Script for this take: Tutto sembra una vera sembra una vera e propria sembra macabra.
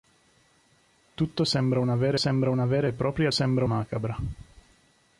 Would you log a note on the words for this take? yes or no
no